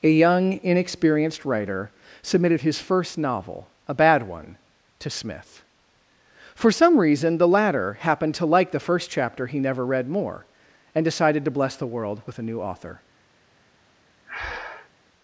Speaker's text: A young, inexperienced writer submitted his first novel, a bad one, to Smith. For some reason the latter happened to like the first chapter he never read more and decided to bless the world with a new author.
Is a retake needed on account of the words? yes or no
no